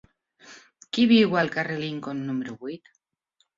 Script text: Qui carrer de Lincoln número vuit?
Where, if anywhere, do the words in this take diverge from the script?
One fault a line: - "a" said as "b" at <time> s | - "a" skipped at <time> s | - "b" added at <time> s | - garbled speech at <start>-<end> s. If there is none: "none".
- "viu al" added at 1.1 s